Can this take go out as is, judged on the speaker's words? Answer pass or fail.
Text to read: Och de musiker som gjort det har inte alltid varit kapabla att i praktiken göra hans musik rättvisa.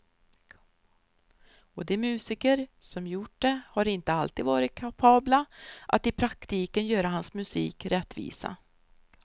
pass